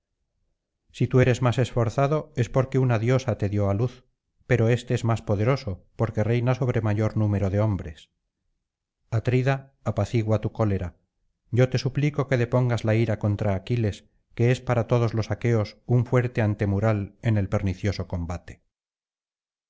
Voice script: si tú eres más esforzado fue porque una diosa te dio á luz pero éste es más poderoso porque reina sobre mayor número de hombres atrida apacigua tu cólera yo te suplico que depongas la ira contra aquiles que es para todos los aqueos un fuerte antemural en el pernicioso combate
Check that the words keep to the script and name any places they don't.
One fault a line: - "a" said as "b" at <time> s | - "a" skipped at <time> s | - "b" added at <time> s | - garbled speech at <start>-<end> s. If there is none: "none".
- "fue" said as "es" at 2.4 s